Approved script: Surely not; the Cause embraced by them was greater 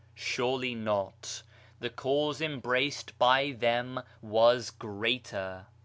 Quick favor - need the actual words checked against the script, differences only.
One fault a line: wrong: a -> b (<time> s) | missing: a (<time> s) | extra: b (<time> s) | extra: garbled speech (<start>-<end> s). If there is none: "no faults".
no faults